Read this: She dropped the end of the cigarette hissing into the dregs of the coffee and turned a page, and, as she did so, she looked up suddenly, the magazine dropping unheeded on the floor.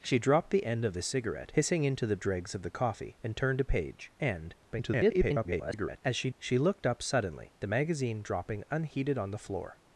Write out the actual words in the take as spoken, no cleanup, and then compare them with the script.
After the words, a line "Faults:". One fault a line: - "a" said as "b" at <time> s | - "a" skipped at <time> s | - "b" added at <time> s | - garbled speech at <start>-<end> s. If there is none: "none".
She dropped the end of the cigarette hissing into the dregs of the coffee and turned a page, and, [garbled] as she she looked up suddenly, the magazine dropping unheeded on the floor.
Faults:
- garbled speech at 4.7-6.0 s
- "did so" skipped at 6.3 s